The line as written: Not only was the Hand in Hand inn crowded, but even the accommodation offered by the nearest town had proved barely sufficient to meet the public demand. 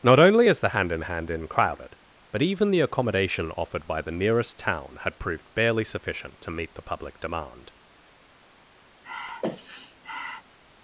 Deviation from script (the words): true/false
true